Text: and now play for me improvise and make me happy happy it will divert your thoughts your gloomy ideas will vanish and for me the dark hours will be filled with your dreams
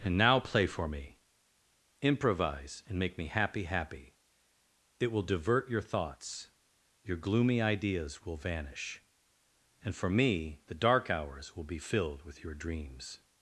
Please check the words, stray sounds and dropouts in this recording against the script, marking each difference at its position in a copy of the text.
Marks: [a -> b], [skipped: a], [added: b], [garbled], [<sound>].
and now play for me improvise and make me happy happy it will divert your thoughts your gloomy ideas will vanish and for me the dark hours will be filled with your dreams